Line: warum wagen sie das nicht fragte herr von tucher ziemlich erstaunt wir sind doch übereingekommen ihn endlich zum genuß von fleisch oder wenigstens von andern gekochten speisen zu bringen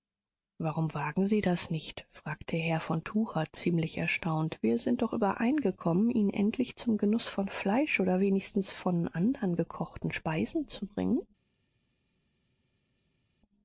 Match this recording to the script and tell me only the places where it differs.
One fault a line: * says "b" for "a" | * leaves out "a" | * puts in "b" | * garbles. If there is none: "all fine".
all fine